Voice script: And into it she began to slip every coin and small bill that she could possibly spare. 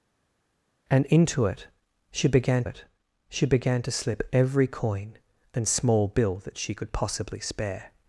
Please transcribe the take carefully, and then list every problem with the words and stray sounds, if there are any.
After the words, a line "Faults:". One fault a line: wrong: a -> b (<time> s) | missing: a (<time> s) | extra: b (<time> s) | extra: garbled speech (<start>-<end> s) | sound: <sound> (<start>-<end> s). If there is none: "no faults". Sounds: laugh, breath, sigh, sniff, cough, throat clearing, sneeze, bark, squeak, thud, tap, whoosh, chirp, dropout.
And into it she began it she began to slip every coin and small bill that she could possibly spare.
Faults:
extra: it she began (2.6 s)